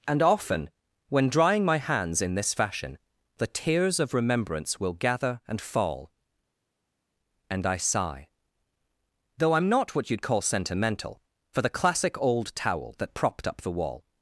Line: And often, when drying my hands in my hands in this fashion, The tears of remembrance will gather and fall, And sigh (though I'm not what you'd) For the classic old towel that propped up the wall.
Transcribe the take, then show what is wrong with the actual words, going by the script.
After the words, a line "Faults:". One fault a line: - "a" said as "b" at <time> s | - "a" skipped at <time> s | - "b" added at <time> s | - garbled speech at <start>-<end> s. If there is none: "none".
And often, when drying my hands in this fashion, The tears of remembrance will gather and fall, And I sigh (though I'm not what you'd call sentimental) For the classic old towel that propped up the wall.
Faults:
- "my hands in" skipped at 2.4 s
- "I" added at 7.7 s
- "call sentimental" added at 10.2 s